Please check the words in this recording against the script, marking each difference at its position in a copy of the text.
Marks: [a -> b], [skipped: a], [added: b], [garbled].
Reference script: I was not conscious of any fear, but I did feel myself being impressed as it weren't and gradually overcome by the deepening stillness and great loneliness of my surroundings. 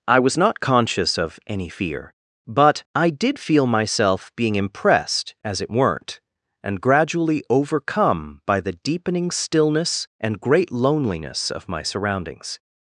I was not conscious of any fear, but I did feel myself being impressed as it weren't and gradually overcome by the deepening stillness and great loneliness of my surroundings.